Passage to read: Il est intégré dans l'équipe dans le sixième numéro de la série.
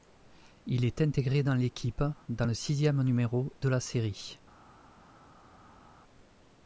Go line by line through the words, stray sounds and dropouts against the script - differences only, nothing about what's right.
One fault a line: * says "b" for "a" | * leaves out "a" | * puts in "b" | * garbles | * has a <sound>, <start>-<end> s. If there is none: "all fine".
all fine